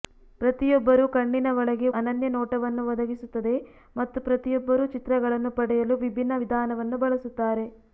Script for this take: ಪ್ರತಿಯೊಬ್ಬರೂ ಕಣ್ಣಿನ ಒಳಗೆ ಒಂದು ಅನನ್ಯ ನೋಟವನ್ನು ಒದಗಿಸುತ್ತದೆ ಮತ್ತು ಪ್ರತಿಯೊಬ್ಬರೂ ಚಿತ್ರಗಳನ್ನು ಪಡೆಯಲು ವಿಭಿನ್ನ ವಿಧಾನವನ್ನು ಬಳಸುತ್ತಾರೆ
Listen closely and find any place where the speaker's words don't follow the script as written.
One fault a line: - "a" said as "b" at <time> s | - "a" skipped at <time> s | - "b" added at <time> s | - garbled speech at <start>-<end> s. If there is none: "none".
- "ಒಂದು" skipped at 1.9 s